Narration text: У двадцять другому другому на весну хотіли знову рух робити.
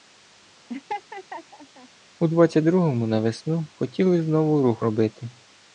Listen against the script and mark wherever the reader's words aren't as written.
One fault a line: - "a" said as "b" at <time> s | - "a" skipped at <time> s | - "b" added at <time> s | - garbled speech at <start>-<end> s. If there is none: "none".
- "другому" skipped at 3.1 s